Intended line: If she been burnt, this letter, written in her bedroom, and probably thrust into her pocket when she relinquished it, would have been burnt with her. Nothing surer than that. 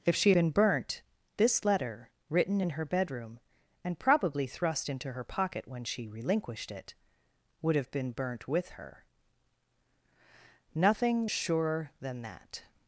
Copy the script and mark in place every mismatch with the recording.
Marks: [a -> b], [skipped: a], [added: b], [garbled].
If she been burnt, this letter, written in her bedroom, and probably thrust into her pocket when she relinquished it, would have been burnt with her. Nothing surer than that.